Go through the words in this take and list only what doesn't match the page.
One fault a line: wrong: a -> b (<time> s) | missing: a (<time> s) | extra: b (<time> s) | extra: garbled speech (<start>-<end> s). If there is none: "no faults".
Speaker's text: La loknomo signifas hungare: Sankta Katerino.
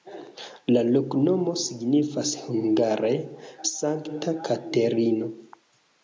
no faults